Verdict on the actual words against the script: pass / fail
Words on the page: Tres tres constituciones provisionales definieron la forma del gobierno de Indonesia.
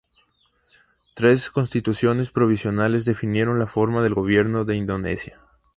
fail